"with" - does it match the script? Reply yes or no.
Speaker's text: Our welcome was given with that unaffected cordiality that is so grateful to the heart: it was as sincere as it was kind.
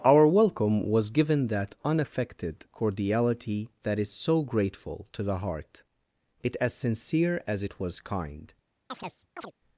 no